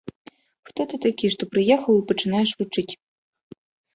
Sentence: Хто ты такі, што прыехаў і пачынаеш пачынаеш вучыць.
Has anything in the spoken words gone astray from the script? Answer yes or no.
yes